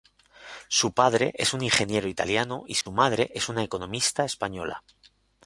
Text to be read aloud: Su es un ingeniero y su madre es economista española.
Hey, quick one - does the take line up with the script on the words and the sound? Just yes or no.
no